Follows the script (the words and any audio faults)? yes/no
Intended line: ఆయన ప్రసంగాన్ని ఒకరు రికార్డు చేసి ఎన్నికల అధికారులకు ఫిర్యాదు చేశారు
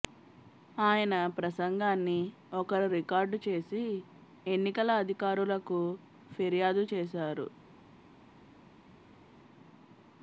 yes